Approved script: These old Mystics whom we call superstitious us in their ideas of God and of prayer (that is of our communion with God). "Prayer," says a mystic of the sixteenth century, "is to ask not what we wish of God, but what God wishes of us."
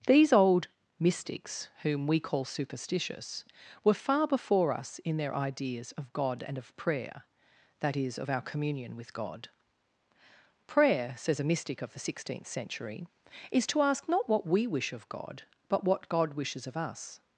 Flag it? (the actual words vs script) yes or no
yes